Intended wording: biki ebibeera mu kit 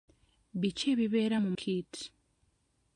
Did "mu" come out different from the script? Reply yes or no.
no